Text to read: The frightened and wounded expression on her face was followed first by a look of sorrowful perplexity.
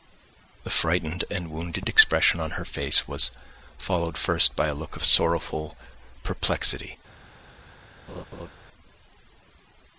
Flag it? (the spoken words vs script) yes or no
no